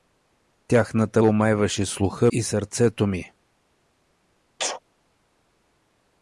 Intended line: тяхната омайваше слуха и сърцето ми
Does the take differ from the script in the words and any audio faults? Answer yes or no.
yes